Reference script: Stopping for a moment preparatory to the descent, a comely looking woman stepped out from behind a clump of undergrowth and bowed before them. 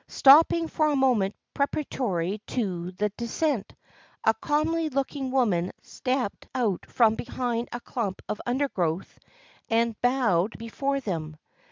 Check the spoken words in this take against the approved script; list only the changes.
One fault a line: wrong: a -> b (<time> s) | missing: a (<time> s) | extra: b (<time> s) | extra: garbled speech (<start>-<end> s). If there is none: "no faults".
no faults